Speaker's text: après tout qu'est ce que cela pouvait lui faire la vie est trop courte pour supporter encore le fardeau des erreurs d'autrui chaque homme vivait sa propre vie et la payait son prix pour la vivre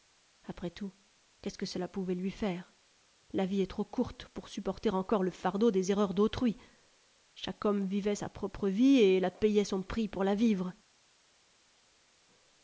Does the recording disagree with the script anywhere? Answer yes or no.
no